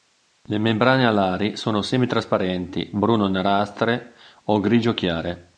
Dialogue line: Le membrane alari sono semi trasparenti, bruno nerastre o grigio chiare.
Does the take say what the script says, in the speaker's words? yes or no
yes